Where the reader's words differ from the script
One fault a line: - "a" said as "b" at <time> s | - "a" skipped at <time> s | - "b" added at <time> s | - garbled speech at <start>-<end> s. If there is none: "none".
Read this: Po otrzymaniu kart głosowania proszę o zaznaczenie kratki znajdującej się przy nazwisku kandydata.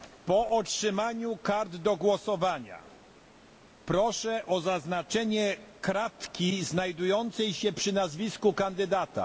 - "do" added at 1.8 s